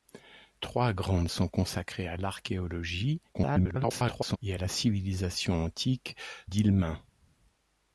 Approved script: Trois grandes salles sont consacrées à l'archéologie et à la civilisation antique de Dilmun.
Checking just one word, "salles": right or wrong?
wrong